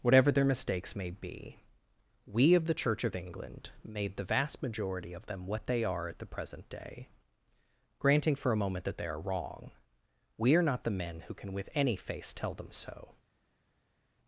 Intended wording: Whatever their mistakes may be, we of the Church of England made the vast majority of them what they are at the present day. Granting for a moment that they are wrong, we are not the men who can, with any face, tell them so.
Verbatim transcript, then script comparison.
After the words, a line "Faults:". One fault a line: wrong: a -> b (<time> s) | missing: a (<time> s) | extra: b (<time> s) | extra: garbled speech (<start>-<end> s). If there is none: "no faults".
Whatever their mistakes may be, we of the Church of England made the vast majority of them what they are at the present day. Granting for a moment that they are wrong, we are not the men who can, with any face, tell them so.
Faults:
no faults